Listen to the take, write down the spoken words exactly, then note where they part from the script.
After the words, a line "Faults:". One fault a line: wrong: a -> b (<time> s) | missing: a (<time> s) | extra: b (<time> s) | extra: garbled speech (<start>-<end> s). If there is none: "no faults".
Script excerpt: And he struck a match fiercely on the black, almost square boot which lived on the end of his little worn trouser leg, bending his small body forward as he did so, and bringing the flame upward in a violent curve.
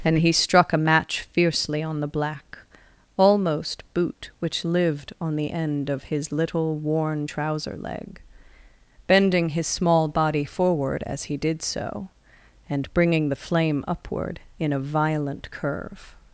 And he struck a match fiercely on the black, almost boot which lived on the end of his little worn trouser leg, bending his small body forward as he did so, and bringing the flame upward in a violent curve.
Faults:
missing: square (3.8 s)